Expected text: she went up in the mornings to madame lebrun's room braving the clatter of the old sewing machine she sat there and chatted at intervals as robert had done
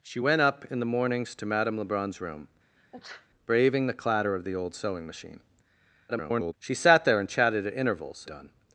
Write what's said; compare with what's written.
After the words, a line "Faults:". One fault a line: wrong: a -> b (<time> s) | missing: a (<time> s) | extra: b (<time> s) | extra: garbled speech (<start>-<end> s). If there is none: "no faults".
she went up in the mornings to madame lebrun's room braving the clatter of the old sewing machine [garbled] she sat there and chatted at intervals done
Faults:
extra: garbled speech (6.1-6.5 s)
missing: as robert had (8.3 s)